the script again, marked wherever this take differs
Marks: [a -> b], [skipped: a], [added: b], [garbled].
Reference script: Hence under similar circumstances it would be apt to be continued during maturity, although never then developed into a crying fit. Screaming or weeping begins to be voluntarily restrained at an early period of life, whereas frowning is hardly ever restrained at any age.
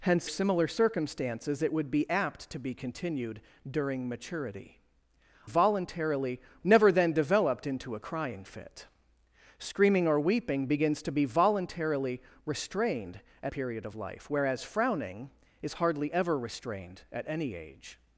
Hence [skipped: under] similar circumstances it would be apt to be continued during maturity, [although -> voluntarily] never then developed into a crying fit. Screaming or weeping begins to be voluntarily restrained at [skipped: an early] period of life, whereas frowning is hardly ever restrained at any age.